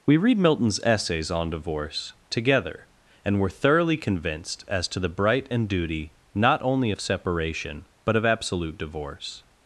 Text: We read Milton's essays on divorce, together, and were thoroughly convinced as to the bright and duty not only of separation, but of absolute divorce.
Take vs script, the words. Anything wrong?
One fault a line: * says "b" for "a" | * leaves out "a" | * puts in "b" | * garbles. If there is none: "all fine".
all fine